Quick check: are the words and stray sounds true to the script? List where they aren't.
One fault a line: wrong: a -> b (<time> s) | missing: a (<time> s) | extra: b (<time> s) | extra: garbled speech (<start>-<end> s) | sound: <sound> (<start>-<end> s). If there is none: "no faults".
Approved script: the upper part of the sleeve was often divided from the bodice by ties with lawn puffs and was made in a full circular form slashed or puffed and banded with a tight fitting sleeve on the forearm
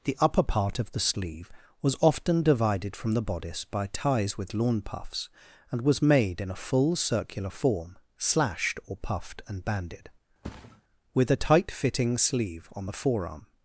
sound: thud (10.4-10.8 s)